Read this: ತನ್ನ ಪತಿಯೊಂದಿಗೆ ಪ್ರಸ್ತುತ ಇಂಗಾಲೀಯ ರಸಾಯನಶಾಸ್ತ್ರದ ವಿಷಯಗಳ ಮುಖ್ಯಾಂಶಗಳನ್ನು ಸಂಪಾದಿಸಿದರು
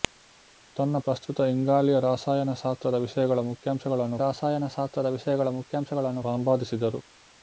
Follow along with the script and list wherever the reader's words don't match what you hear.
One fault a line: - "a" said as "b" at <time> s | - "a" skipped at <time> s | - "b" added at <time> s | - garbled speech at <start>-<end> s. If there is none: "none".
- "ಪತಿಯೊಂದಿಗೆ" skipped at 1.0 s
- "ರಸಾಯನಶಾಸ್ತ್ರದ ವಿಷಯಗಳ ಮುಖ್ಯಾಂಶಗಳನ್ನು" added at 4.2 s